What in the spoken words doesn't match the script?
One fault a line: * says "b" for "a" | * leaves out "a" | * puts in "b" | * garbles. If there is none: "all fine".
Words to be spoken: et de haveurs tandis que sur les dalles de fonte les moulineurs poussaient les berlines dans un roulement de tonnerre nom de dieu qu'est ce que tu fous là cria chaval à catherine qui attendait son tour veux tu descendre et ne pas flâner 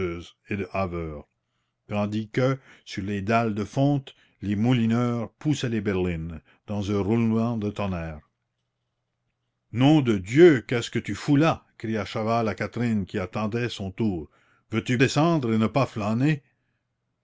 all fine